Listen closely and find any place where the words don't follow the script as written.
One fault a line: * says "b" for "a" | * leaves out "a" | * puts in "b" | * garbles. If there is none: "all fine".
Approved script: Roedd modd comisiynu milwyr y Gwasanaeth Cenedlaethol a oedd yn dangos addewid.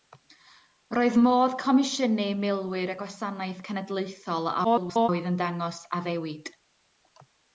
* garbles